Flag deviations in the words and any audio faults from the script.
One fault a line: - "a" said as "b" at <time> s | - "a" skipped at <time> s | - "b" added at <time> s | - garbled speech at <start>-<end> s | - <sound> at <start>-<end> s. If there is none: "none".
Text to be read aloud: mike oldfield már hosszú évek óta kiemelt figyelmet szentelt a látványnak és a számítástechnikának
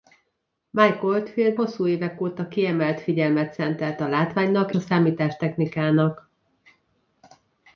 - "már" skipped at 1.6 s
- "és" skipped at 4.7 s